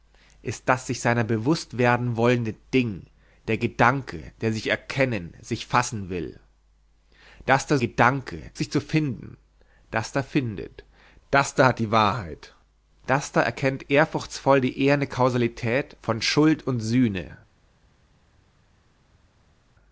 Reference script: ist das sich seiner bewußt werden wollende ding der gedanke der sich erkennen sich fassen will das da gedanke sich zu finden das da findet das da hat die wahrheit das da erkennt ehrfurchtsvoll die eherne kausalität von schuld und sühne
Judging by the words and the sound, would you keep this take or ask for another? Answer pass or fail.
pass